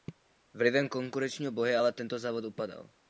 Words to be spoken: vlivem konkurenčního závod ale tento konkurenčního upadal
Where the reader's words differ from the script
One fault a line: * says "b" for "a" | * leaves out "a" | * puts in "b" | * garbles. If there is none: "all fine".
* says "boje" for "závod"
* says "závod" for "konkurenčního"